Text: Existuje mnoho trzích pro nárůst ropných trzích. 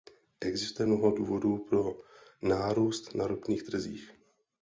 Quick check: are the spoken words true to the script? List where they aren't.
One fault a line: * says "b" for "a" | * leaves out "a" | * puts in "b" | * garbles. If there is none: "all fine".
* says "důvodů" for "trzích"
* puts in "na"